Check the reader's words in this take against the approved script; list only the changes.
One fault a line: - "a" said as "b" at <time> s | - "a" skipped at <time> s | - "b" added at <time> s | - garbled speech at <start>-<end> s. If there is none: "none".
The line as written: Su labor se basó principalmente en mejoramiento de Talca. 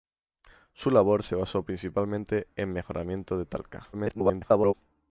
- garbled speech at 3.9-4.7 s